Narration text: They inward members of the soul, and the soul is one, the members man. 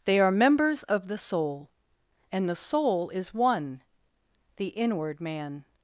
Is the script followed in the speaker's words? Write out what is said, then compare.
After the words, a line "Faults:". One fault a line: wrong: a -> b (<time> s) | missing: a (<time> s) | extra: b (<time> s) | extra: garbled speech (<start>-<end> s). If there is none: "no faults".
They are members of the soul, and the soul is one, the inward man.
Faults:
wrong: inward -> are (0.2 s)
wrong: members -> inward (4.7 s)